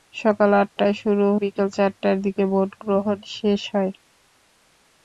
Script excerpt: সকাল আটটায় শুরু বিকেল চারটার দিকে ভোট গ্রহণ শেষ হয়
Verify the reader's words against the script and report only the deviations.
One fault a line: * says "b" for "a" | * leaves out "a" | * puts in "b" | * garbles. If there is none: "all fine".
all fine